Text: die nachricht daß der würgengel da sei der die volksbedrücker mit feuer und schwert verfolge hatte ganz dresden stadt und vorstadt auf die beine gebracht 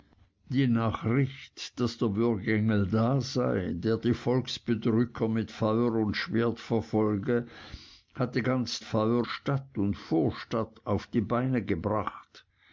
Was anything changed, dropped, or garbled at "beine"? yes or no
no